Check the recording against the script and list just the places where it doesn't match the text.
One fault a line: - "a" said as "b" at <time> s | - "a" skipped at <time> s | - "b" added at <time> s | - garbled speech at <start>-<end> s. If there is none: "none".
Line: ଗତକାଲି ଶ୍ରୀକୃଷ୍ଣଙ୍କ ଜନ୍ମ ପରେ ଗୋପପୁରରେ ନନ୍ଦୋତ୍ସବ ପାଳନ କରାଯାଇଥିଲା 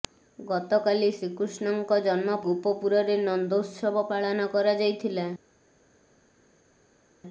- "ପରେ" skipped at 2.4 s